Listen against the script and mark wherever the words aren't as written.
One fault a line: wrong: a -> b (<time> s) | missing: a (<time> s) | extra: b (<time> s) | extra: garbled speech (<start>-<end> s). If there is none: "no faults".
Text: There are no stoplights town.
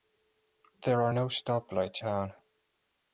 no faults